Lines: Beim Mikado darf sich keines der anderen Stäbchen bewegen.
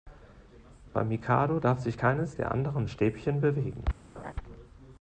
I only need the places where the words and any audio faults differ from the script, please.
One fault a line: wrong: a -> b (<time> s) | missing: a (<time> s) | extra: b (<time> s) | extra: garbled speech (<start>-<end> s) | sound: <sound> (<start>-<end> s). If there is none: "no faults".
sound: laugh (4.1-4.3 s)